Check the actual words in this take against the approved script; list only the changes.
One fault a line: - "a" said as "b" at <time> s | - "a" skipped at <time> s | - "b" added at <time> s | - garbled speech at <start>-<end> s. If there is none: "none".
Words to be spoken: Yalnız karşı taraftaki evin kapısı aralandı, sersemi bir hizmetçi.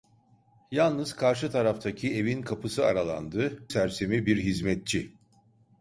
none